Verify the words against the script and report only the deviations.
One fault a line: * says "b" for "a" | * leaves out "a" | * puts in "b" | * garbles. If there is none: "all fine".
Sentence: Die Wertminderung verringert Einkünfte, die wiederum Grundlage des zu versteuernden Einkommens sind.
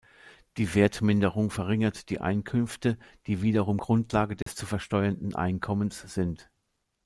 * puts in "die"